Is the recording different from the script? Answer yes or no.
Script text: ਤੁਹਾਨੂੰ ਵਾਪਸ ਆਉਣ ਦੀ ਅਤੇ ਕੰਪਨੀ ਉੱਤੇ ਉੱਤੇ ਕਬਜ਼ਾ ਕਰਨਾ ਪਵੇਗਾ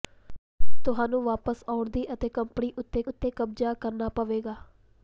no